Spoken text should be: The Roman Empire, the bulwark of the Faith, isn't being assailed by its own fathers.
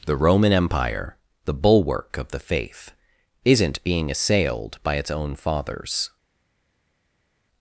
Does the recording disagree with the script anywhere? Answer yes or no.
no